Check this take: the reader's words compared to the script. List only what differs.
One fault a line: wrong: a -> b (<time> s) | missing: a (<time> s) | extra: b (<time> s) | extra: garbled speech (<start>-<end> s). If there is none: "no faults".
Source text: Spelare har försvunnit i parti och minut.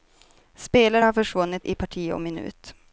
no faults